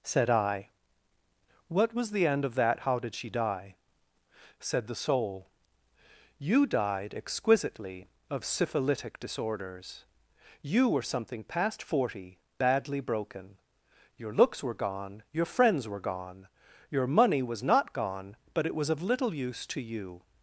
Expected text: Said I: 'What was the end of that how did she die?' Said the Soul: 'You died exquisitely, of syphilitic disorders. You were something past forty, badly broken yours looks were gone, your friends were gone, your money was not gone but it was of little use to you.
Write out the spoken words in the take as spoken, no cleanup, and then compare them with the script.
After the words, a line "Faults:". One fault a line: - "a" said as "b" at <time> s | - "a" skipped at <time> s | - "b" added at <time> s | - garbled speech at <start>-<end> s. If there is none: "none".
Said I: 'What was the end of that how did she die?' Said the Soul: 'You died exquisitely, of syphilitic disorders. You were something past forty, badly broken your looks were gone, your friends were gone, your money was not gone but it was of little use to you.
Faults:
- "yours" said as "your" at 14.2 s